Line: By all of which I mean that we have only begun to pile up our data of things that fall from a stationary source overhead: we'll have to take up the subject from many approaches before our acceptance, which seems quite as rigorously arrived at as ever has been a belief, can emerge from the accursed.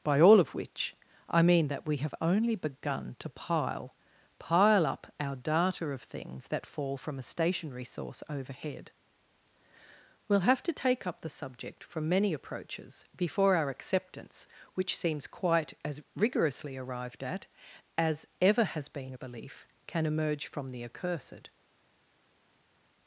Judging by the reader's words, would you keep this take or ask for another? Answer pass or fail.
fail